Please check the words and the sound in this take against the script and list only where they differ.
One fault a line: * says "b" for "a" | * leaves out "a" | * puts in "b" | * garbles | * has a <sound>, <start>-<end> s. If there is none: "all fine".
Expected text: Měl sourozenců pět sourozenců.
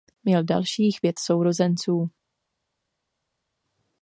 * says "dalších" for "sourozenců"